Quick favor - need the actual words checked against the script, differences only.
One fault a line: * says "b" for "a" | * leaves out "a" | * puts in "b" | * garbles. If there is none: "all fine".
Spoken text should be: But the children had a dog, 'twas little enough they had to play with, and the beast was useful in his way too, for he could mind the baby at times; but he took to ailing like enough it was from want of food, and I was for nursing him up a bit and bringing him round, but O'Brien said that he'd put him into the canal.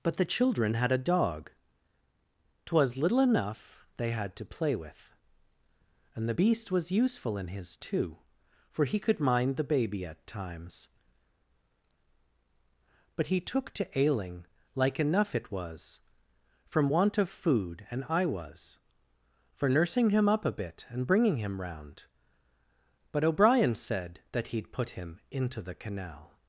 * leaves out "way"